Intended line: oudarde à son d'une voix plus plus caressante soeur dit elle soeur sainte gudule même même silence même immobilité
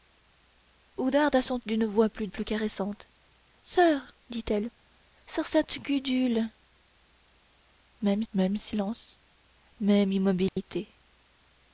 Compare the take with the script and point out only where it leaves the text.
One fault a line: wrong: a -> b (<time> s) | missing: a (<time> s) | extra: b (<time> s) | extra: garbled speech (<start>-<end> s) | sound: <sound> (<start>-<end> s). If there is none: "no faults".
sound: dropout (10.5-10.6 s)